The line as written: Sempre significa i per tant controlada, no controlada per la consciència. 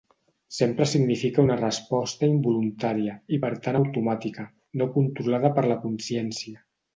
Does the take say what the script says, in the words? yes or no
no